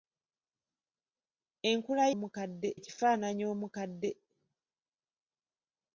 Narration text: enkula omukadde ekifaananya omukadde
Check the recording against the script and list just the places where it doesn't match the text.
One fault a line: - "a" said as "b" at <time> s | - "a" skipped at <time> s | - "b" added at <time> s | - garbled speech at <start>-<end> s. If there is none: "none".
none